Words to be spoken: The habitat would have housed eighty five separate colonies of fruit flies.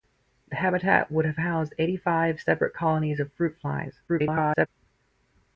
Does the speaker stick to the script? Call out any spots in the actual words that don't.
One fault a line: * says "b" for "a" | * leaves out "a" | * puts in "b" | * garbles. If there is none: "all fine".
* garbles